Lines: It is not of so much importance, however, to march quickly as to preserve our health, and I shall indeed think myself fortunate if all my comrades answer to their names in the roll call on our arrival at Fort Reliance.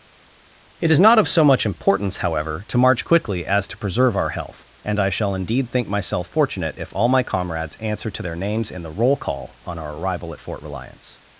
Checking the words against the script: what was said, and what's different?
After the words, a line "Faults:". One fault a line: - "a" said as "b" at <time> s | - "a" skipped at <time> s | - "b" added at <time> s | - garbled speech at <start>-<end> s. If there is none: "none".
It is not of so much importance, however, to march quickly as to preserve our health, and I shall indeed think myself fortunate if all my comrades answer to their names in the roll call on our arrival at Fort Reliance.
Faults:
none